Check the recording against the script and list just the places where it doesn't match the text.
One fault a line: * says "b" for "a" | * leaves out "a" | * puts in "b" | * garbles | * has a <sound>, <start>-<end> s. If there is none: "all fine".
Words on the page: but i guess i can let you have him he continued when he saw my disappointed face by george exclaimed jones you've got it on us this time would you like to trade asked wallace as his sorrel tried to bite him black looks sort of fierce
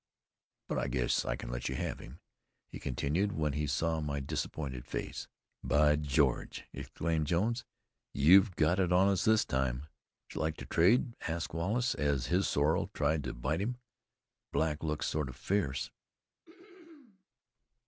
* has a throat clearing, 16.4-17.2 s